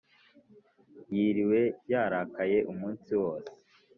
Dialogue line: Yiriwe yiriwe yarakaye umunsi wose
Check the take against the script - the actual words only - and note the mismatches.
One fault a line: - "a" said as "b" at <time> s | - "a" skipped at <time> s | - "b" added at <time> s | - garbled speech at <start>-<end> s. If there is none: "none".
- "yiriwe" skipped at 1.6 s